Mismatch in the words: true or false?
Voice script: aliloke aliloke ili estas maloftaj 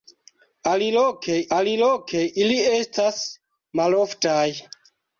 false